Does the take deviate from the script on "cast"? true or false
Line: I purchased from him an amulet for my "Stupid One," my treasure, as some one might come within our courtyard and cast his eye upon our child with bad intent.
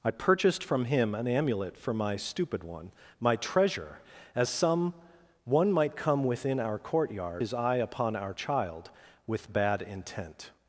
true